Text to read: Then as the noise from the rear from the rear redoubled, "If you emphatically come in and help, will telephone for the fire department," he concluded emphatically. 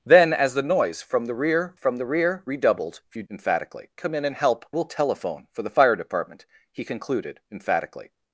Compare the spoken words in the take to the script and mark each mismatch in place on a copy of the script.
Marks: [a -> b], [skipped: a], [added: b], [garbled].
Then as the noise from the rear from the rear redoubled, "If you emphatically come in and help, will telephone for the fire department," he concluded emphatically.